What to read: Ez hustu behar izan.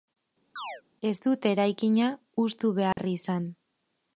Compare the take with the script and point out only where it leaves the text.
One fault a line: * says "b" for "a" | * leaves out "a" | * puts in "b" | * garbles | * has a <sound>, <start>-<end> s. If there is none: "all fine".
* has a chirp, 0.6-0.8 s
* puts in "dute eraikina"
* has a dropout, 2.9-3.0 s